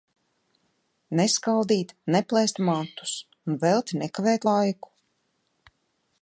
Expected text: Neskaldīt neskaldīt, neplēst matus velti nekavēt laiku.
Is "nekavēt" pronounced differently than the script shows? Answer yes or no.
no